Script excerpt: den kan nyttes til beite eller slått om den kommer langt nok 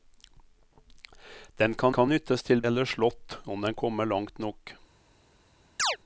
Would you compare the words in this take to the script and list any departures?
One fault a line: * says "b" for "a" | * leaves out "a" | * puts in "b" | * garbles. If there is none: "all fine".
* puts in "kan"
* leaves out "beite"